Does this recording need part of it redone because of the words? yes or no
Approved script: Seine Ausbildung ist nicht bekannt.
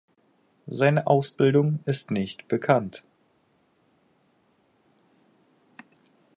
no